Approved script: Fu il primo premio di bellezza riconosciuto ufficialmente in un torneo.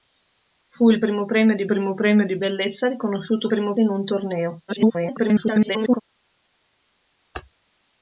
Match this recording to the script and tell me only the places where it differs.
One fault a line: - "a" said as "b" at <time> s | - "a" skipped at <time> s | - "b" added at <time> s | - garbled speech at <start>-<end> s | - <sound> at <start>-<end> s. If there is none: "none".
- "primo premio di" added at 1.6 s
- "ufficialmente" said as "primo" at 3.5 s
- garbled speech at 4.7-6.0 s